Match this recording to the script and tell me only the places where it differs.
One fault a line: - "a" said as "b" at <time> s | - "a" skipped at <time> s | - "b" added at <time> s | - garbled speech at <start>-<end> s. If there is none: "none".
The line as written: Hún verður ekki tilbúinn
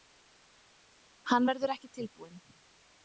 - "Hún" said as "Hann" at 1.3 s